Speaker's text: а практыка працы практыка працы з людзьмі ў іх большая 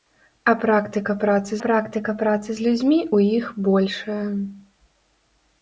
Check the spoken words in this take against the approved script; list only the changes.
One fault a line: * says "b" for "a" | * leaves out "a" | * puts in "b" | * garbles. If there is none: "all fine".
all fine